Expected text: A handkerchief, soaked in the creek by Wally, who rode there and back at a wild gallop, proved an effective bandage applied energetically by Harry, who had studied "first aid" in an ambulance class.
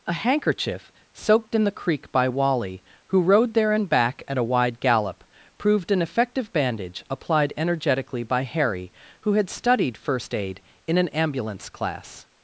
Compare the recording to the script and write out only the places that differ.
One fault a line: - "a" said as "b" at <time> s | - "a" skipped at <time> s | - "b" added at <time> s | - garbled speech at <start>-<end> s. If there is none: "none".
- "wild" said as "wide" at 4.4 s